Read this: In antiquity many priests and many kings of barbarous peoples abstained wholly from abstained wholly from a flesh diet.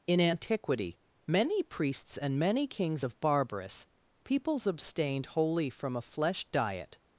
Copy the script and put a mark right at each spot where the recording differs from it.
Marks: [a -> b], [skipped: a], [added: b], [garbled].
In antiquity many priests and many kings of barbarous peoples abstained wholly from [skipped: abstained wholly from] a flesh diet.